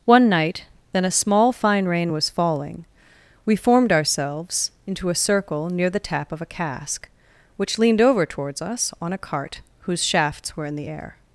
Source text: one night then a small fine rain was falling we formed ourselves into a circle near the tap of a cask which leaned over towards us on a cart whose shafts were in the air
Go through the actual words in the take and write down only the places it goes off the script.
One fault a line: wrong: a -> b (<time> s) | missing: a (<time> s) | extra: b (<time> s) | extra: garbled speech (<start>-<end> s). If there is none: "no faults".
no faults